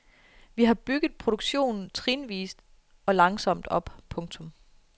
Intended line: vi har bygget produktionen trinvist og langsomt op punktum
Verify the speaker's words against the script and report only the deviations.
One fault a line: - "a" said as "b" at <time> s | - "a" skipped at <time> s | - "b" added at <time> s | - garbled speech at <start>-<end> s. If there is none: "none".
none